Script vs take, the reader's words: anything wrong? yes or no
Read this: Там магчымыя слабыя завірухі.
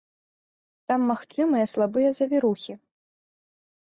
no